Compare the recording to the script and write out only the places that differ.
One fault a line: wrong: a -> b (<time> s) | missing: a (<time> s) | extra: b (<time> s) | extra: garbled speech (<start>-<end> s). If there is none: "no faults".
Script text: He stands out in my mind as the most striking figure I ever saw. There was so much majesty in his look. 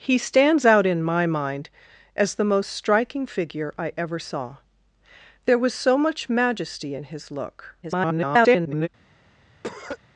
extra: garbled speech (7.8-8.9 s)